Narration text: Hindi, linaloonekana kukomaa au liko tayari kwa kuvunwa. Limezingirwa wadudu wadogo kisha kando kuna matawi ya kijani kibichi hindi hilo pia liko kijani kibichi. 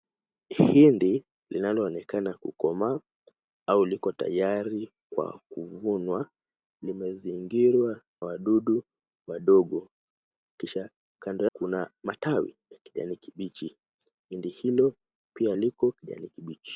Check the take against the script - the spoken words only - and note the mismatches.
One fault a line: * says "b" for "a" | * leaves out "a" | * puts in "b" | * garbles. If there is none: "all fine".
all fine